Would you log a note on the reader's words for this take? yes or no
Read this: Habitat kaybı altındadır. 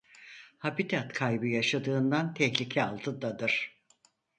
yes